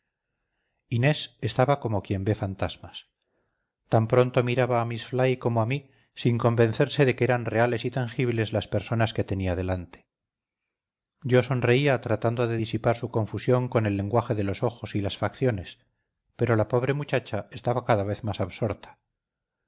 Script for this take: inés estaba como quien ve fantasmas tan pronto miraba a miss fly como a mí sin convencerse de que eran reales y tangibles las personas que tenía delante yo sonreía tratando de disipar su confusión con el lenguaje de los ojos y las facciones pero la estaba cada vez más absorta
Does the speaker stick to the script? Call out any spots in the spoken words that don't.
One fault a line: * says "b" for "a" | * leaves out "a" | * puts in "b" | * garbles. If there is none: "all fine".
* puts in "pobre muchacha"